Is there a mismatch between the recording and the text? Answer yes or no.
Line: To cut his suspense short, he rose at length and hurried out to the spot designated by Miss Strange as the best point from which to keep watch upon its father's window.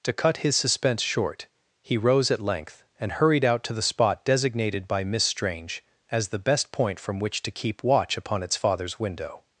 no